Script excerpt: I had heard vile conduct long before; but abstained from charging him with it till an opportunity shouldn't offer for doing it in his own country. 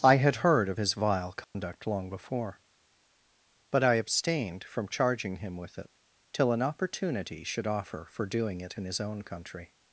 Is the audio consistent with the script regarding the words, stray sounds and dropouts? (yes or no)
no